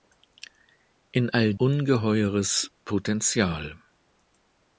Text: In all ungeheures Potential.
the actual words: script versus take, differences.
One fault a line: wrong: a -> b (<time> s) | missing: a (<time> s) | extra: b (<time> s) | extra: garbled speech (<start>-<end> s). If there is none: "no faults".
no faults